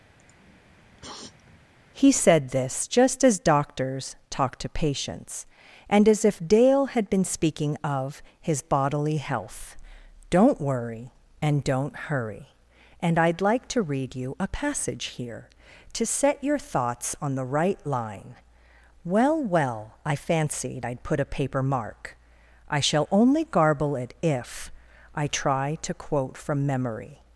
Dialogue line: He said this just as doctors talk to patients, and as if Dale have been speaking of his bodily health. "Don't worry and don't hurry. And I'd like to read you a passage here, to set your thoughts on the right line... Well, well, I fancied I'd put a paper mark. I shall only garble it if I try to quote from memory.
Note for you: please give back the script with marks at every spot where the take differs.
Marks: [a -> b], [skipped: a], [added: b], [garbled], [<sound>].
[sniff] He said this just as doctors talk to patients, and as if Dale [have -> had] been speaking of his bodily health. "Don't worry and don't hurry. And I'd like to read you a passage here, to set your thoughts on the right line... Well, well, I fancied I'd put a paper mark. I shall only garble it if I try to quote from memory.